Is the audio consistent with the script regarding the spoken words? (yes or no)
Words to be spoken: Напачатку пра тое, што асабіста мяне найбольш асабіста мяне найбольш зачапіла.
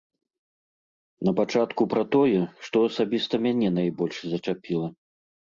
no